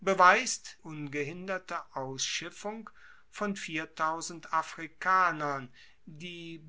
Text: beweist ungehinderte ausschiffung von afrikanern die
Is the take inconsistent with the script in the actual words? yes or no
no